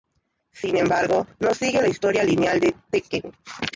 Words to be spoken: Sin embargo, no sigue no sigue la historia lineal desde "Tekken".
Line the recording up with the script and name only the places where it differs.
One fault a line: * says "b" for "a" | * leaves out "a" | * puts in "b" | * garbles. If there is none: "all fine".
* leaves out "no sigue"
* says "de" for "desde"